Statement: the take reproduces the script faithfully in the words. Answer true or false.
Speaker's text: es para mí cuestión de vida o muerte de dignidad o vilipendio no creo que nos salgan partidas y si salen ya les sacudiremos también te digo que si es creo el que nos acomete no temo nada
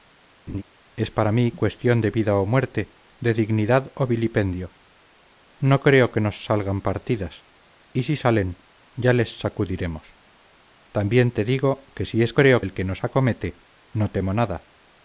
true